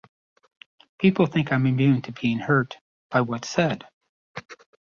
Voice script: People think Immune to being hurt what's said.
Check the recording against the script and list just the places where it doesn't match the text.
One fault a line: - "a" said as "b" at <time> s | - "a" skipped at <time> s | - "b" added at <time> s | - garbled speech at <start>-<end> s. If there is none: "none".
- "I'm" added at 1.5 s
- "by" added at 3.1 s